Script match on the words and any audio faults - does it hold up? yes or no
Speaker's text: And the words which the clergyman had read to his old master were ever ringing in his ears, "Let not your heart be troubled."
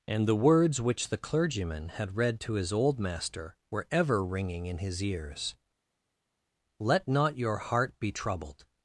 yes